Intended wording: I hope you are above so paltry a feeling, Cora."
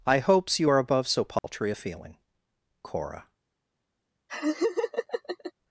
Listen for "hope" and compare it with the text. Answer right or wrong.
wrong